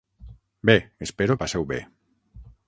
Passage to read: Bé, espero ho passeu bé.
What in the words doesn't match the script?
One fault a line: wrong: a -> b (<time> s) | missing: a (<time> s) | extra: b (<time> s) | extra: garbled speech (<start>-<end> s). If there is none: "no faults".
no faults